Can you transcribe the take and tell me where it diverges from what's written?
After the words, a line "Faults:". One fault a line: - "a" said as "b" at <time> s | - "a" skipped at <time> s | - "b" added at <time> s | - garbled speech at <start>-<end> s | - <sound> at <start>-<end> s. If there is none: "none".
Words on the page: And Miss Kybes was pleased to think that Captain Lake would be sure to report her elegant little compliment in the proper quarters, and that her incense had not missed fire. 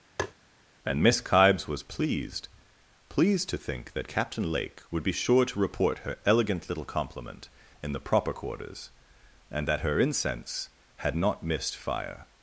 And Miss Kybes was pleased pleased to think that Captain Lake would be sure to report her elegant little compliment in the proper quarters, and that her incense had not missed fire.
Faults:
- tap at 0.2-0.3 s
- "pleased" added at 3.1 s